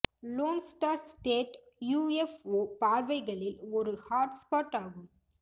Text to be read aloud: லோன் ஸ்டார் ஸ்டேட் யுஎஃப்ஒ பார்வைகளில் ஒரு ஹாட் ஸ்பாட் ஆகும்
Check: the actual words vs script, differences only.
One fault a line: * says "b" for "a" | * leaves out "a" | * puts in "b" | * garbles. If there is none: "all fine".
all fine